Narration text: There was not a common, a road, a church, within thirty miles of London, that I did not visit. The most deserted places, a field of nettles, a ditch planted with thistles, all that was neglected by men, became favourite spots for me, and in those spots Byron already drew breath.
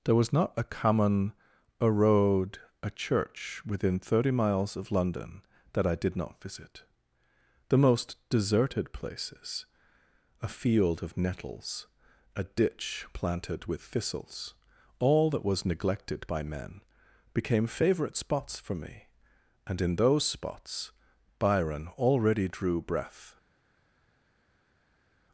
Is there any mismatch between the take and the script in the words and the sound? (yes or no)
no